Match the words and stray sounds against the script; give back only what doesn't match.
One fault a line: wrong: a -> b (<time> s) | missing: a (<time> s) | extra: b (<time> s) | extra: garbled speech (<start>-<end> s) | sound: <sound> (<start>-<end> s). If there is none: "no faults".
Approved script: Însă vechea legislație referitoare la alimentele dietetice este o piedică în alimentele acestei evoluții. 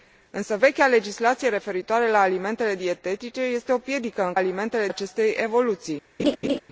sound: laugh (6.2-6.6 s)